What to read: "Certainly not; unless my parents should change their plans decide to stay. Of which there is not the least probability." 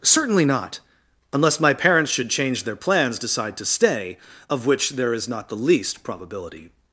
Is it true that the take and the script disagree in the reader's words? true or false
false